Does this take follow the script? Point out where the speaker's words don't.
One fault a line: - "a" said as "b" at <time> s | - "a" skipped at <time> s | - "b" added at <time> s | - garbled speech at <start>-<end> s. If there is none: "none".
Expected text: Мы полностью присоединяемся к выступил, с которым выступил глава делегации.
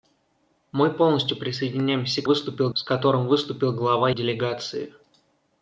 none